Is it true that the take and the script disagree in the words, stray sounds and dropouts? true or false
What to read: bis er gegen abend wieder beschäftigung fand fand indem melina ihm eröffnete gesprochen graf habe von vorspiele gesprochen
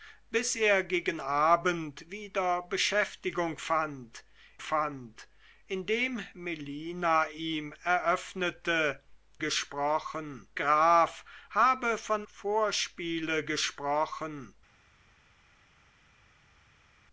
false